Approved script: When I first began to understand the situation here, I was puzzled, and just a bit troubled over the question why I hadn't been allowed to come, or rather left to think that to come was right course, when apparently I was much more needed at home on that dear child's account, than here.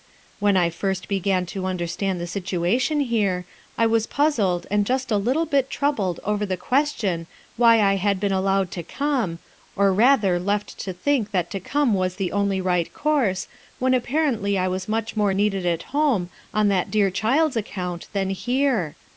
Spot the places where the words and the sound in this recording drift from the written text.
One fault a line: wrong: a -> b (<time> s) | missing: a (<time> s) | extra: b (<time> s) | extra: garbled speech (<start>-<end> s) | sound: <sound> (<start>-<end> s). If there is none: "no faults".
extra: little (5.2 s)
wrong: hadn't -> had (8.0 s)
extra: the only (12.2 s)